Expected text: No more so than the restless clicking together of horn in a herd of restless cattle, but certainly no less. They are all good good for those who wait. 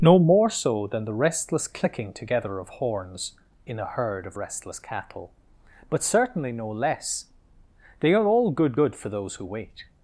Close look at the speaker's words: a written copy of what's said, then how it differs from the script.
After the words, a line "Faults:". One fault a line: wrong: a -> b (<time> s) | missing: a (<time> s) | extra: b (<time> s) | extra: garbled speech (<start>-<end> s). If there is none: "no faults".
No more so than the restless clicking together of horns in a herd of restless cattle, but certainly no less. They are all good good for those who wait.
Faults:
wrong: horn -> horns (2.7 s)